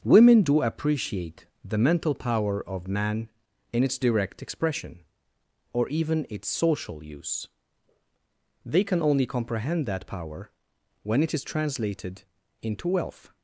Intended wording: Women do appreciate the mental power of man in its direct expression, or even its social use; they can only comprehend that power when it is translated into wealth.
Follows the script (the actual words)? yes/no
yes